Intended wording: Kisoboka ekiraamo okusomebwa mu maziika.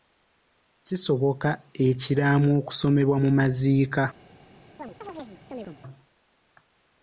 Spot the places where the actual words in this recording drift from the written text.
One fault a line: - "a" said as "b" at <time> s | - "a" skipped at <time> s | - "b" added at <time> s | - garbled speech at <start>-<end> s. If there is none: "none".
none